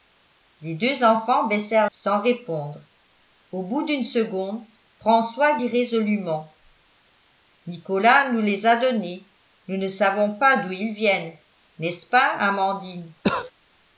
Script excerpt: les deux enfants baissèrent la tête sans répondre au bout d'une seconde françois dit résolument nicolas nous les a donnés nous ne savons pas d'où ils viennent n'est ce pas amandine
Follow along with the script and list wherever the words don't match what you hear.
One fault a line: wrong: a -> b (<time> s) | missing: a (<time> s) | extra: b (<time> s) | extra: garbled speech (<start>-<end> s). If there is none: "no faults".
missing: la tête (1.9 s)